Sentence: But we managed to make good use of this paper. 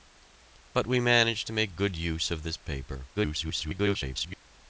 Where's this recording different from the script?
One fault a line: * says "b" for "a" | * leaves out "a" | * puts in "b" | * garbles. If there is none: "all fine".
* garbles